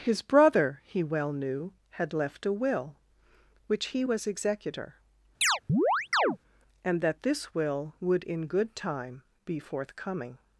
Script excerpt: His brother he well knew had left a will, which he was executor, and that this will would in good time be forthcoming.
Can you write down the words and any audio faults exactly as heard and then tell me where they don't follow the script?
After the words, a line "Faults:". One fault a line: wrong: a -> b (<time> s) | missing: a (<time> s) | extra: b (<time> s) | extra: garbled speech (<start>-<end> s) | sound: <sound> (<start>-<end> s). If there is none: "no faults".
His brother he well knew had left a will, which he was executor, and that this will would in good time be forthcoming.
Faults:
sound: chirp (5.4-6.4 s)